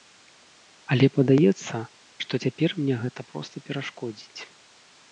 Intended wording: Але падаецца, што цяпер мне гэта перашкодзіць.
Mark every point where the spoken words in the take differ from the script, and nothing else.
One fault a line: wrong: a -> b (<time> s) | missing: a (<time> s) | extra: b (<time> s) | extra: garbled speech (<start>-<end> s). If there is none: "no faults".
extra: проста (3.3 s)